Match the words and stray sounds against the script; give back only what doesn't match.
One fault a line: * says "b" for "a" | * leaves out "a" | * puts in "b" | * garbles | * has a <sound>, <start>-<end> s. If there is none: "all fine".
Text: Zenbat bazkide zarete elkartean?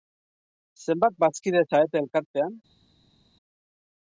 all fine